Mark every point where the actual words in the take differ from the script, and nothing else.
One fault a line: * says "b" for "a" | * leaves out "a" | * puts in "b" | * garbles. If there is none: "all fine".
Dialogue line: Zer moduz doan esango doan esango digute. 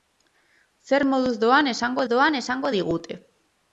all fine